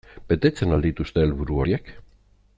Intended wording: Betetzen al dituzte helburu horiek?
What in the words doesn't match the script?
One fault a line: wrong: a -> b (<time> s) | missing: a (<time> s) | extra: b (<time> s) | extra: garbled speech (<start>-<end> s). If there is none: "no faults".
no faults